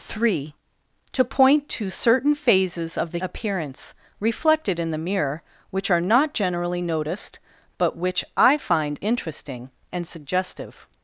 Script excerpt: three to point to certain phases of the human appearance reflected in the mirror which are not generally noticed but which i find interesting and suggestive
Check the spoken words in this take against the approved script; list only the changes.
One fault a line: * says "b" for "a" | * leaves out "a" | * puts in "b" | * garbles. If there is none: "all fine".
* leaves out "human"